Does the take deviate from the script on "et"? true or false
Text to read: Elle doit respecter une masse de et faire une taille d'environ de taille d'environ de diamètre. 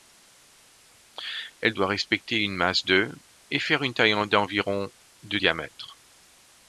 false